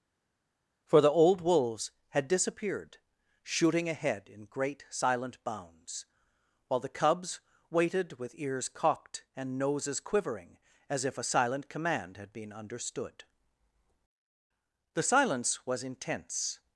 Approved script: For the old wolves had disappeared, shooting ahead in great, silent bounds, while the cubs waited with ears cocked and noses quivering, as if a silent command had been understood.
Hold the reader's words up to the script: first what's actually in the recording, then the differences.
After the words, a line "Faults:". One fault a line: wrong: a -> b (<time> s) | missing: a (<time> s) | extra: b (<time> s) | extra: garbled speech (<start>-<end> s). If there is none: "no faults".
For the old wolves had disappeared, shooting ahead in great, silent bounds, while the cubs waited with ears cocked and noses quivering, as if a silent command had been understood. The silence was intense
Faults:
extra: The silence was intense (14.9 s)